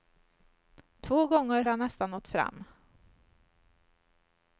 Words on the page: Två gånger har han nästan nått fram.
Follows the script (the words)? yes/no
no